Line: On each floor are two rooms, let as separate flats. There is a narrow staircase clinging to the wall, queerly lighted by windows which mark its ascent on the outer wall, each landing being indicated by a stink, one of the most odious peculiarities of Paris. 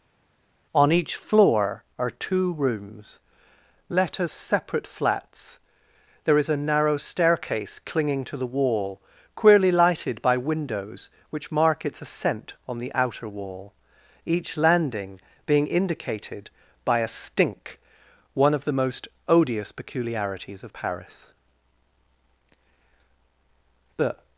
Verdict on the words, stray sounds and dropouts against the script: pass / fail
fail